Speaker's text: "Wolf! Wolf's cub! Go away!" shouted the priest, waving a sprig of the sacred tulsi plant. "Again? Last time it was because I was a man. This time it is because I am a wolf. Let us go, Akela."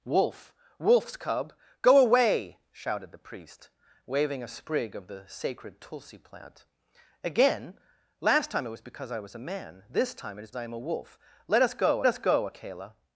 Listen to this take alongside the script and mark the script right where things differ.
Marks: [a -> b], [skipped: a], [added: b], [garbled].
"Wolf! Wolf's cub! Go away!" shouted the priest, waving a sprig of the sacred tulsi plant. "Again? Last time it was because I was a man. This time it is [skipped: because] I am a wolf. Let us go, [added: us go] Akela."